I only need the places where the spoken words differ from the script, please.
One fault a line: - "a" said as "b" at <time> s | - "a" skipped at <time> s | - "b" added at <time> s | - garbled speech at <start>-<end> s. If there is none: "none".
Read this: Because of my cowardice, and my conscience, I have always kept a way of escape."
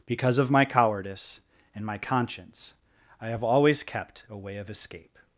none